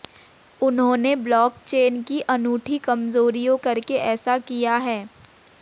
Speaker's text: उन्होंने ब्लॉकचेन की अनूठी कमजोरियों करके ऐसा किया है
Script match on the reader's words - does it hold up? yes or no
yes